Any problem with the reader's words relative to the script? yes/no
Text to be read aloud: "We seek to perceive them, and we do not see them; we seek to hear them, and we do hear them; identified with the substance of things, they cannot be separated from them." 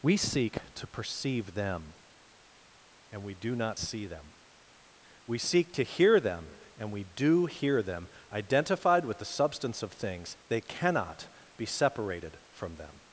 no